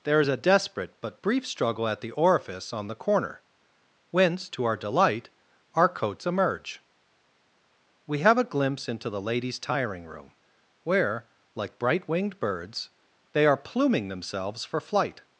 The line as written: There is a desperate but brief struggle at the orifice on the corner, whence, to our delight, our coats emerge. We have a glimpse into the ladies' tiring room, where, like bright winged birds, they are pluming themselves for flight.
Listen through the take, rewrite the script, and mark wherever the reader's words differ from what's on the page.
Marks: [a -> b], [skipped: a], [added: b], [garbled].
There is a desperate but brief struggle at the orifice on the corner, whence, to our delight, our coats emerge. We have a glimpse into the ladies' tiring room, where, like bright winged birds, they are pluming themselves for flight.